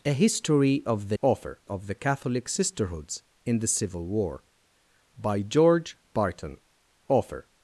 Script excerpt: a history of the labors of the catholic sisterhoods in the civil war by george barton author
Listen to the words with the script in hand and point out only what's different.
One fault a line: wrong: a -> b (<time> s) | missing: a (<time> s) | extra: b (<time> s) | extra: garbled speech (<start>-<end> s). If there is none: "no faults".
wrong: labors -> author (1.2 s)